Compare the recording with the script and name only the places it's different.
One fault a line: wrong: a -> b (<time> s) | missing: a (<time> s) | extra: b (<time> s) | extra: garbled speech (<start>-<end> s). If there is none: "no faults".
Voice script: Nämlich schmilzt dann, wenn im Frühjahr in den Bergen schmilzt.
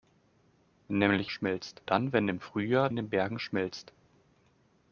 no faults